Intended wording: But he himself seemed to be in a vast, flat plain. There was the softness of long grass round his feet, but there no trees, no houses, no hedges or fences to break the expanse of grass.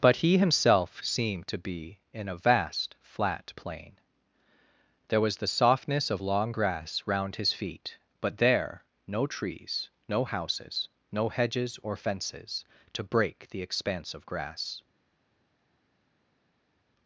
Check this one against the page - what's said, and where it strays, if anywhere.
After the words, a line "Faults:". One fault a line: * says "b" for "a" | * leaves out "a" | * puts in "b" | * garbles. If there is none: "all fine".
But he himself seemed to be in a vast, flat plain. There was the softness of long grass round his feet, but there no trees, no houses, no hedges or fences to break the expanse of grass.
Faults:
all fine